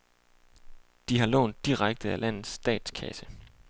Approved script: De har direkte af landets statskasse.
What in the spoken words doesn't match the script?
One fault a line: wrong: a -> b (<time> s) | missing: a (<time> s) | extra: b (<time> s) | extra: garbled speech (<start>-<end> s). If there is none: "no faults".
extra: lånt (1.3 s)